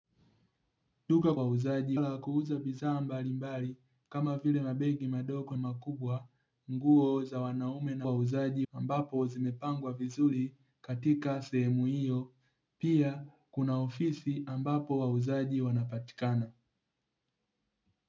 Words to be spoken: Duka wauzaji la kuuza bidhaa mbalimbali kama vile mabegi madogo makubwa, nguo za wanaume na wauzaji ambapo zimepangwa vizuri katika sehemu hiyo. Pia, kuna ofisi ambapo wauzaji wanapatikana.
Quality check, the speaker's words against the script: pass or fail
pass